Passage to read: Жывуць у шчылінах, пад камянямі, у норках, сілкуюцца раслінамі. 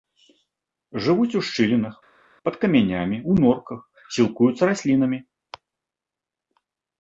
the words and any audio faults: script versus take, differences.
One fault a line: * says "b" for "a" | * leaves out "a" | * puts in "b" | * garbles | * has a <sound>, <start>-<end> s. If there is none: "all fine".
all fine